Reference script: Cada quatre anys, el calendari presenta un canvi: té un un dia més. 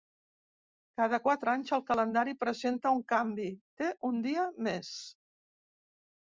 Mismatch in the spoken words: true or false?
true